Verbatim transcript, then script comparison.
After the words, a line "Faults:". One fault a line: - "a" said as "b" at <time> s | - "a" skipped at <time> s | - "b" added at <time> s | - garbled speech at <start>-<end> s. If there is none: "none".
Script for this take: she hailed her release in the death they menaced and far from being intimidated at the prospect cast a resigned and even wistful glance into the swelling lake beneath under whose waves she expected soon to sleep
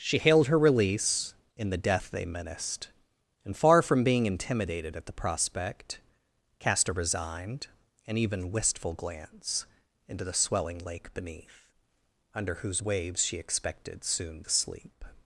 she hailed her release in the death they menaced and far from being intimidated at the prospect cast a resigned and even wistful glance into the swelling lake beneath under whose waves she expected soon to sleep
Faults:
none